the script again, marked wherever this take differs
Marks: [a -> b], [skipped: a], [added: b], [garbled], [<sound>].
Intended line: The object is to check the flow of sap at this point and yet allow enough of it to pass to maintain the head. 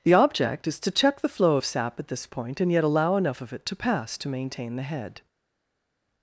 The object is to check the flow of sap at this point and yet allow enough of it to pass to maintain the head.